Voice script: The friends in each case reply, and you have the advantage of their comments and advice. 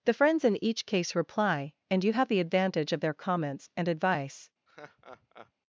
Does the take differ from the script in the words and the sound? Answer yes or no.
yes